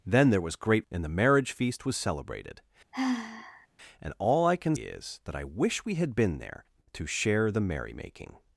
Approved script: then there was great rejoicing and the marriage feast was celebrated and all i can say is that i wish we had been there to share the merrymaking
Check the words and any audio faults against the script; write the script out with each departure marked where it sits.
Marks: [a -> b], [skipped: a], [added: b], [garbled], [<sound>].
then there was great [skipped: rejoicing] and the marriage feast was celebrated [sigh] and all i can [skipped: say] is that i wish we had been there to share the merrymaking